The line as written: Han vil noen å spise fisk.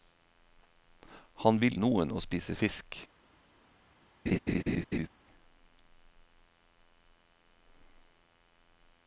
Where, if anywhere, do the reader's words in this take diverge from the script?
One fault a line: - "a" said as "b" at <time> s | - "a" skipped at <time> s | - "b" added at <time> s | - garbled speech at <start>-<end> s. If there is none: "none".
none